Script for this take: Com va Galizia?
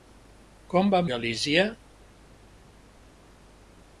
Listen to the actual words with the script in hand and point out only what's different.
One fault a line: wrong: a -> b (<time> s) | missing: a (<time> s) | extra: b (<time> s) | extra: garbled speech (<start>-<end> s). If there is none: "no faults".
no faults